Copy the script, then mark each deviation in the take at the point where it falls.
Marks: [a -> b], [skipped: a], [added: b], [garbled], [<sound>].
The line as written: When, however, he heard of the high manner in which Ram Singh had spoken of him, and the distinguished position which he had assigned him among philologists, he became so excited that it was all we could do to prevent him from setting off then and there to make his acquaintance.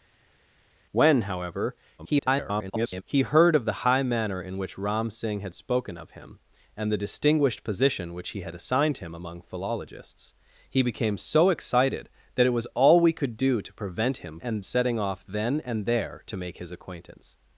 When, however, [garbled] he heard of the high manner in which Ram Singh had spoken of him, and the distinguished position which he had assigned him among philologists, he became so excited that it was all we could do to prevent him [from -> and] setting off then and there to make his acquaintance.